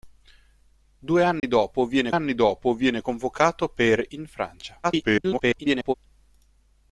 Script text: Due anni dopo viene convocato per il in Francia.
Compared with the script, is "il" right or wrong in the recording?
wrong